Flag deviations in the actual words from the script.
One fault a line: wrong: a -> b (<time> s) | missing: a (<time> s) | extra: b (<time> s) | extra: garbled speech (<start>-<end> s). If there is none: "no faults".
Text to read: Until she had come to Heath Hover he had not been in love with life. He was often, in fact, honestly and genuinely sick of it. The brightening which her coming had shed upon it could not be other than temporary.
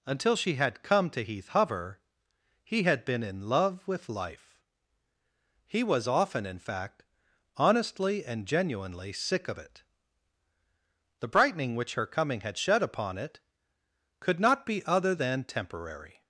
missing: not (3.0 s)